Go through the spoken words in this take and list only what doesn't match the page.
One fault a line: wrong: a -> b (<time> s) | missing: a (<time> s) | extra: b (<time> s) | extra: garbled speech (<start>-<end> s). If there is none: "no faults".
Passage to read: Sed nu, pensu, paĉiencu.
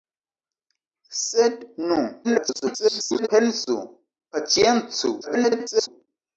extra: garbled speech (2.2-3.3 s)
extra: garbled speech (5.2-5.9 s)